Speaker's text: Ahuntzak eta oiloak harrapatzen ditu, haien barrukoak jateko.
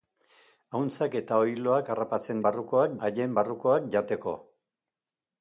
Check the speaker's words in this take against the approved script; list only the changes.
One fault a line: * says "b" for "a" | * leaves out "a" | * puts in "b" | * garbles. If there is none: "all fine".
* says "barrukoak" for "ditu"